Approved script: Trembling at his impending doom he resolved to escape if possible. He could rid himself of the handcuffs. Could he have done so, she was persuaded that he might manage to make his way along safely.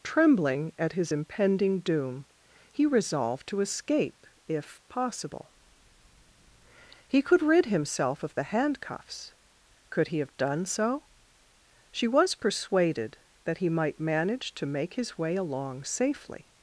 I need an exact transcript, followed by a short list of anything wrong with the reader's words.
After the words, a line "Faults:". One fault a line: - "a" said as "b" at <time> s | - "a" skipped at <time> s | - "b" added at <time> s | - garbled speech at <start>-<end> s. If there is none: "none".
Trembling at his impending doom he resolved to escape if possible. He could rid himself of the handcuffs. Could he have done so, she was persuaded that he might manage to make his way along safely.
Faults:
none